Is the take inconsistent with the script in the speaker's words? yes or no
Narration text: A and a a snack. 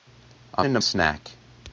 no